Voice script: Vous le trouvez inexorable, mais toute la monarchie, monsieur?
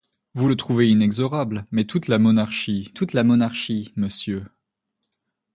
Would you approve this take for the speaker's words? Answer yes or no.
no